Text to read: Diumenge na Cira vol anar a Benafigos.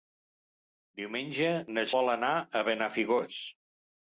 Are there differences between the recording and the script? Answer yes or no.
yes